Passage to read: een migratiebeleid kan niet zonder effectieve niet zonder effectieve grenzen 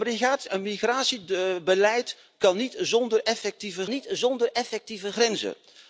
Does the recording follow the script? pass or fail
pass